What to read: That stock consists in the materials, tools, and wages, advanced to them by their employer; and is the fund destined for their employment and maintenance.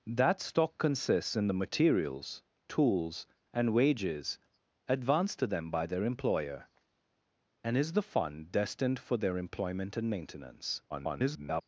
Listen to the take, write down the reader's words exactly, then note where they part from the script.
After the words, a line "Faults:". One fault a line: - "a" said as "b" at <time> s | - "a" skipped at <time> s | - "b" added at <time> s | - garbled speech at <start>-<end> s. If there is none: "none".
That stock consists in the materials, tools, and wages, advanced to them by their employer; and is the fund destined for their employment and maintenance. [garbled]
Faults:
- garbled speech at 10.9-11.6 s